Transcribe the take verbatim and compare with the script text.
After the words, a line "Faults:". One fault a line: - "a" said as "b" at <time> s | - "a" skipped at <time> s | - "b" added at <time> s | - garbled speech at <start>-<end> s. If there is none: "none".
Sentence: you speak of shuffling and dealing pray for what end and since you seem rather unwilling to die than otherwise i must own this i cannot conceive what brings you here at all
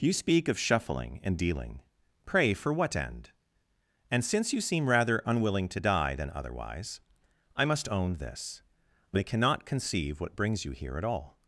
you speak of shuffling and dealing pray for what end and since you seem rather unwilling to die than otherwise i must own this i cannot conceive what brings you here at all
Faults:
none